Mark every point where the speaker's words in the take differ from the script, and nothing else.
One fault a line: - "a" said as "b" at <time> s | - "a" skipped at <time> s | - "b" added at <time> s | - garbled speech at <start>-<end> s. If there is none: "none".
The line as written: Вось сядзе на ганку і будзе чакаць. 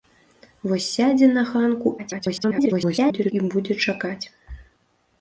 - garbled speech at 2.0-3.3 s